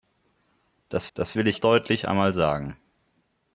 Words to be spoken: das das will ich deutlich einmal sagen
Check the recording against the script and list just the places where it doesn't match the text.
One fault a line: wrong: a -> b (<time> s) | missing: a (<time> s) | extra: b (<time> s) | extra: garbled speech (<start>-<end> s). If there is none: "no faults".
no faults